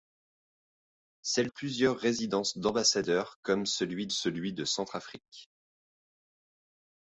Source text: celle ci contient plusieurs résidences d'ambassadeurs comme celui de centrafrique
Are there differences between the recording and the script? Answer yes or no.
yes